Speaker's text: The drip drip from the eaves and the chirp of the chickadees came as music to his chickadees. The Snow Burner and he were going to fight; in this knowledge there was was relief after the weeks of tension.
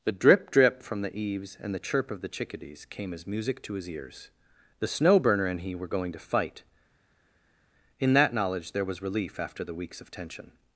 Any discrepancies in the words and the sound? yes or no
yes